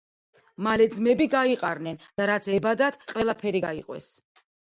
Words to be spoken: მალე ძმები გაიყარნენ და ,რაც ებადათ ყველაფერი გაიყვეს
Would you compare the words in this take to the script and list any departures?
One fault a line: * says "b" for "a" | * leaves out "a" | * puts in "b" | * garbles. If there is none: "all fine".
all fine